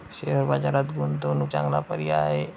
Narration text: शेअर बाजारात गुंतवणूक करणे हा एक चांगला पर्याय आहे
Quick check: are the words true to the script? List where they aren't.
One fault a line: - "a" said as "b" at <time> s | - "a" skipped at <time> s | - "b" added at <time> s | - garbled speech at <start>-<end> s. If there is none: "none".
- "करणे हा एक" skipped at 1.5 s